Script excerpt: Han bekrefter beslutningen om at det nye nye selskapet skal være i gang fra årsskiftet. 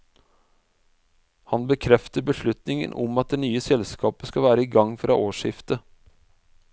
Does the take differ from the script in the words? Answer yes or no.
yes